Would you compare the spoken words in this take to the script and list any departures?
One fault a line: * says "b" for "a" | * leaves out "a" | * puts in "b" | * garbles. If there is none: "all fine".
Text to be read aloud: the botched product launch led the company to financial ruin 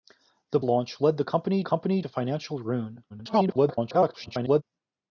* leaves out "botched product"
* puts in "company"
* garbles